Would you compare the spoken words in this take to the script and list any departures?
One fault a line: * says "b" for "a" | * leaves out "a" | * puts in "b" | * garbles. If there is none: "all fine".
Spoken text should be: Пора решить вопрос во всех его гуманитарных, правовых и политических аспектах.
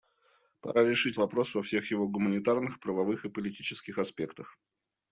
all fine